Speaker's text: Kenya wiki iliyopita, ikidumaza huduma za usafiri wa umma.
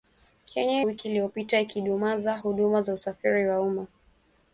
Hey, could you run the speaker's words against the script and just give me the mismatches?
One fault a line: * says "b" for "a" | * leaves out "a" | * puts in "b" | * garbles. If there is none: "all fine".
all fine